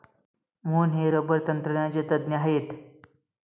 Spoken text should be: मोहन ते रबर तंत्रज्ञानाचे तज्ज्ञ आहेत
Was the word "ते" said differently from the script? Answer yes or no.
yes